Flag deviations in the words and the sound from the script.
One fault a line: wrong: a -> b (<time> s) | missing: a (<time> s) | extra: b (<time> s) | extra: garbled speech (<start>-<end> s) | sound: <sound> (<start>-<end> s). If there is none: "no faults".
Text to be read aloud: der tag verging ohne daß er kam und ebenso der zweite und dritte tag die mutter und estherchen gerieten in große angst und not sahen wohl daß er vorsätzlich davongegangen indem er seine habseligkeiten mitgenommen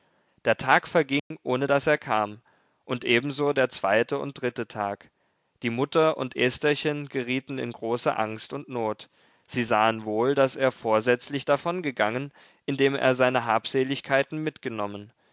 sound: dropout (1.2-1.3 s)
extra: sie (9.5 s)